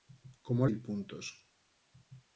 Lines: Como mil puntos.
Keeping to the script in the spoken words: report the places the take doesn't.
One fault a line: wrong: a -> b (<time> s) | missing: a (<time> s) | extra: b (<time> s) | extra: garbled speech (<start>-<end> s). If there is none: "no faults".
no faults